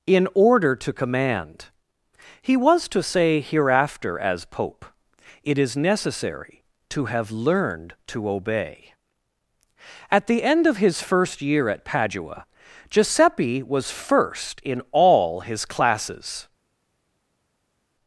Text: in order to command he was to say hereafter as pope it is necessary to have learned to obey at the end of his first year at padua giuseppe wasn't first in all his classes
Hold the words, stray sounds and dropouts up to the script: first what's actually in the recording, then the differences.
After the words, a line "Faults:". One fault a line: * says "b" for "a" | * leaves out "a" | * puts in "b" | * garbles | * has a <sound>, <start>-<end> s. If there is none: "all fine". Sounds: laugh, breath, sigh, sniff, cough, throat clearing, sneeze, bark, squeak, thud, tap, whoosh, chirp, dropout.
in order to command he was to say hereafter as pope it is necessary to have learned to obey at the end of his first year at padua giuseppe was first in all his classes
Faults:
* says "was" for "wasn't"